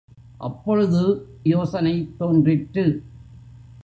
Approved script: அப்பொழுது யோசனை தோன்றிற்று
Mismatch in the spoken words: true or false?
false